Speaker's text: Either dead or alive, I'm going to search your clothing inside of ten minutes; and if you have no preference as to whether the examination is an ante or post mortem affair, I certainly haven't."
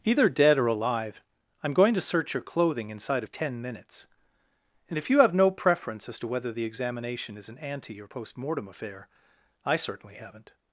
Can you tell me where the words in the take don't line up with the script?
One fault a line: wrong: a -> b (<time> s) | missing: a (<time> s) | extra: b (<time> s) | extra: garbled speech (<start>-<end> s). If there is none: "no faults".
no faults